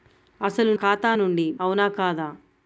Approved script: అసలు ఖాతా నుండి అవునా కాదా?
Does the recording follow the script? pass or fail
pass